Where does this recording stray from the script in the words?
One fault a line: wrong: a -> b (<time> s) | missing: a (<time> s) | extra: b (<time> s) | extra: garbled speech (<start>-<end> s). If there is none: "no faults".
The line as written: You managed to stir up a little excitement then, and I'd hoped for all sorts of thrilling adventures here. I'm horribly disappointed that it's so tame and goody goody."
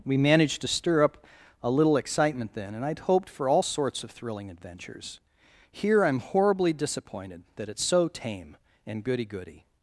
wrong: You -> We (0.1 s)